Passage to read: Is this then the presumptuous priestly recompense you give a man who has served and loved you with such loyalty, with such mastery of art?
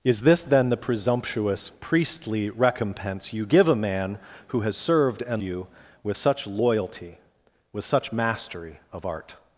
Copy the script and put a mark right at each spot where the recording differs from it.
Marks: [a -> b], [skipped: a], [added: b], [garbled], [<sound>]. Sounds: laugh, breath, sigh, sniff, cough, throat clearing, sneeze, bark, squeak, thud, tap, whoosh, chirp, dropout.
Is this then the presumptuous priestly recompense you give a man who has served and [skipped: loved] you with such loyalty, with such mastery of art?